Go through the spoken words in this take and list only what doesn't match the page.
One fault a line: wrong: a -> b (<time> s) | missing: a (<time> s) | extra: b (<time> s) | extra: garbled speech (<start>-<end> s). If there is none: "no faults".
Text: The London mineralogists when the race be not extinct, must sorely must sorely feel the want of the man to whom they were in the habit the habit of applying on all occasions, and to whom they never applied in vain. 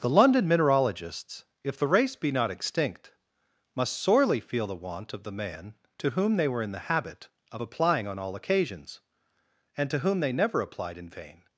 wrong: when -> if (1.6 s)
missing: must sorely (4.4 s)
missing: the habit (7.3 s)